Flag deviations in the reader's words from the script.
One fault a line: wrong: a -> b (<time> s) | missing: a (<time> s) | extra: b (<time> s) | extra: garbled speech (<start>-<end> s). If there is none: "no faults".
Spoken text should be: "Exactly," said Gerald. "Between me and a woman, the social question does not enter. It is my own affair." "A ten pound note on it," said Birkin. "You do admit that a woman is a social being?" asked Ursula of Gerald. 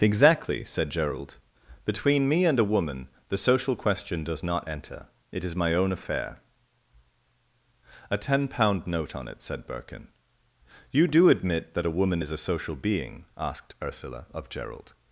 no faults